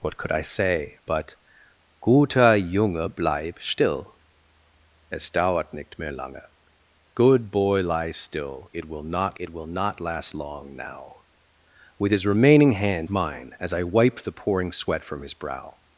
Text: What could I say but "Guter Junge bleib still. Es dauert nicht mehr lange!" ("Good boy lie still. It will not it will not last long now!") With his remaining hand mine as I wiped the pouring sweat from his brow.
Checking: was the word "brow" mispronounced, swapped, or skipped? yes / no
no